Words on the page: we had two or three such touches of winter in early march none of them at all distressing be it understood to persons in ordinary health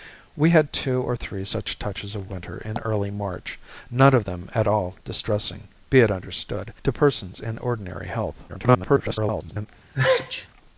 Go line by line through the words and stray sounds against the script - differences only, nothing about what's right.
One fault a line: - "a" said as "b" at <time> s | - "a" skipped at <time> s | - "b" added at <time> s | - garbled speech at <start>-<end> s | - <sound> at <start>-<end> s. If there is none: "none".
- garbled speech at 8.5-9.7 s
- sneeze at 9.9-10.5 s